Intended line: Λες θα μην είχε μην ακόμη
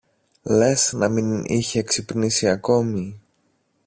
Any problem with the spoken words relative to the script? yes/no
yes